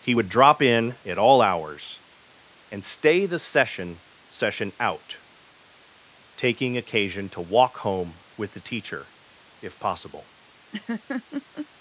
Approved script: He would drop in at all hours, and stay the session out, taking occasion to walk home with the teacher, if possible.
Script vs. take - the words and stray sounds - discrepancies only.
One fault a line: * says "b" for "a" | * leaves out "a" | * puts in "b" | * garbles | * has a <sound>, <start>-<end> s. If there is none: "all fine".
* puts in "session"
* has a laugh, 10.7-11.7 s